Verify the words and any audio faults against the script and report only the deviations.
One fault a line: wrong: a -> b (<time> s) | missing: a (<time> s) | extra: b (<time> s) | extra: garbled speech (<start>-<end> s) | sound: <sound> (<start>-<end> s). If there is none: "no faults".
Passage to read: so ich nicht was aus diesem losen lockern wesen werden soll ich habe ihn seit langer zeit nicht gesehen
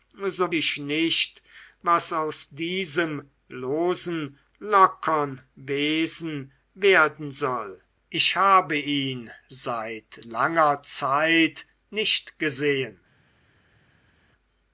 no faults